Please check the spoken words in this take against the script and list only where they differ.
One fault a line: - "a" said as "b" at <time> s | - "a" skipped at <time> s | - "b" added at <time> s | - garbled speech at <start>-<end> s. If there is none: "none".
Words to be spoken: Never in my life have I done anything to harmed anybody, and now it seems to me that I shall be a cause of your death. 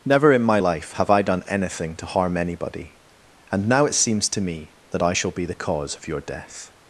- "harmed" said as "harm" at 2.1 s
- "a" said as "the" at 5.5 s